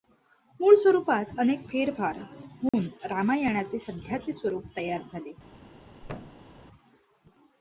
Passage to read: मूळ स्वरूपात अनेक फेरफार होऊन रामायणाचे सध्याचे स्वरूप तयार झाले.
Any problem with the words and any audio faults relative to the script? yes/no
yes